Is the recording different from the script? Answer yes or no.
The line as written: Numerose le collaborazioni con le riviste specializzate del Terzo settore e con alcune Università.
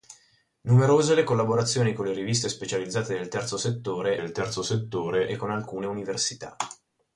yes